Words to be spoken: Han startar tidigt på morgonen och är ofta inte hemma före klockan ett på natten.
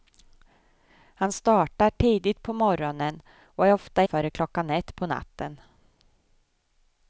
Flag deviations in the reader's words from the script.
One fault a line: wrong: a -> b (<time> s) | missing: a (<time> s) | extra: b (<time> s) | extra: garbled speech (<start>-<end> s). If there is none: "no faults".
missing: inte hemma (4.0 s)